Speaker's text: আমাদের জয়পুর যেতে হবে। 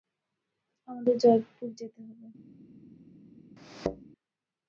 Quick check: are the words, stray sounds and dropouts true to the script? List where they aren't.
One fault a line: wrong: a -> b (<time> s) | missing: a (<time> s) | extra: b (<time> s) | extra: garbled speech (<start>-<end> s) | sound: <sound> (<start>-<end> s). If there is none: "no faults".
sound: thud (3.6-4.1 s)